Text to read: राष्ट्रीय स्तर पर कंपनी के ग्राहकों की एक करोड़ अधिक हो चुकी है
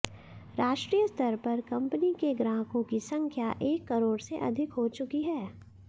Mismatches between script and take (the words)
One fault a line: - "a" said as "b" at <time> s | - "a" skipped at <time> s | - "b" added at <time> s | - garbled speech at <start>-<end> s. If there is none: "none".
- "संख्या" added at 3.1 s
- "से" added at 4.2 s